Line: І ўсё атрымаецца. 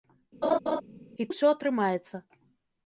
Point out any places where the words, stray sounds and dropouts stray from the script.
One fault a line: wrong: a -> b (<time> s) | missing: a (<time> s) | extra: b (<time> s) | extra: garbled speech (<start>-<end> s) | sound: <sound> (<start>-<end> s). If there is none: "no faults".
sound: laugh (0.4-0.8 s)